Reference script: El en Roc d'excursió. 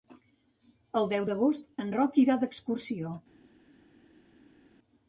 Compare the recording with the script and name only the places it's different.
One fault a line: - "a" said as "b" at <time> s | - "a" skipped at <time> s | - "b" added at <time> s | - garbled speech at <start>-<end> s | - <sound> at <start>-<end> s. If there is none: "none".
- "deu d'agost" added at 1.1 s
- "irà" added at 2.3 s